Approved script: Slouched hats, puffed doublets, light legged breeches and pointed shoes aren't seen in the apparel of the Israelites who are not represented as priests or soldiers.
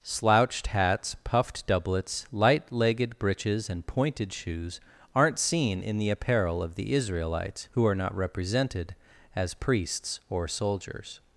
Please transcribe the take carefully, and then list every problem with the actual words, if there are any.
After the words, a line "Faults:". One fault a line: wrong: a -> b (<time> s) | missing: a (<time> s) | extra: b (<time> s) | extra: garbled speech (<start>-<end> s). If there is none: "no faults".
Slouched hats, puffed doublets, light legged breeches and pointed shoes aren't seen in the apparel of the Israelites who are not represented as priests or soldiers.
Faults:
no faults